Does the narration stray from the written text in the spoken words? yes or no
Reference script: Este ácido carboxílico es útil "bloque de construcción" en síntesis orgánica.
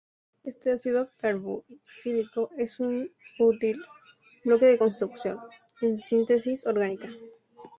yes